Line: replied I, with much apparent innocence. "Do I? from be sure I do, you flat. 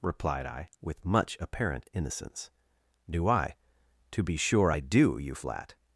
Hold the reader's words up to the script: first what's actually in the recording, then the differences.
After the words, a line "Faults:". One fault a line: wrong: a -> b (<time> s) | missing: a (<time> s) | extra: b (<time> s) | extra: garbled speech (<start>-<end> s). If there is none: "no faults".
replied I, with much apparent innocence. "Do I? to be sure I do, you flat.
Faults:
wrong: from -> to (4.1 s)